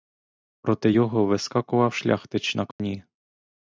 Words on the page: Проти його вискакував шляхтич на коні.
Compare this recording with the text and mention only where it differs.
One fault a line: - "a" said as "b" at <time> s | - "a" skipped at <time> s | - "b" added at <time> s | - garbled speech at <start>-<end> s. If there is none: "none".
none